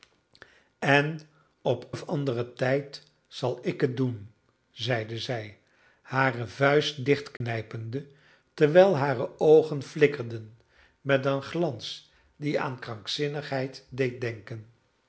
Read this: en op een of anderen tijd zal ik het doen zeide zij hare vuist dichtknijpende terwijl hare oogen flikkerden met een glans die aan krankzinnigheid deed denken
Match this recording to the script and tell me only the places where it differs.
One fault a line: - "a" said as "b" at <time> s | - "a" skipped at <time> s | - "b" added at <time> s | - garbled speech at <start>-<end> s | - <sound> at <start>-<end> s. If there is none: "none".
- "een" skipped at 1.9 s
- dropout at 7.4-7.4 s